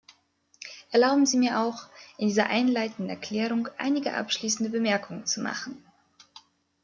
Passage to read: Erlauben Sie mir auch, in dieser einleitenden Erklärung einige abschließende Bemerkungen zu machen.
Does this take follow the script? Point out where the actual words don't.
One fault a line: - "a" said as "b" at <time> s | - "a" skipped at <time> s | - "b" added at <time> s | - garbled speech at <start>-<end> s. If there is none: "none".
none